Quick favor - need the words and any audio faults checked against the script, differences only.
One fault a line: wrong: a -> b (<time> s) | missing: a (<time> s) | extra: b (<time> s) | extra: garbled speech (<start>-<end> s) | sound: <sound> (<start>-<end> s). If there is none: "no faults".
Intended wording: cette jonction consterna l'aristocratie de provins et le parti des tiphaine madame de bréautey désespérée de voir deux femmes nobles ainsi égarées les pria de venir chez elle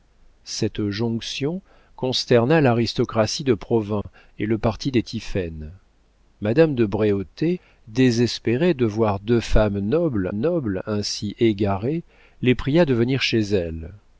sound: dropout (4.0-4.0 s)
extra: nobles (10.3 s)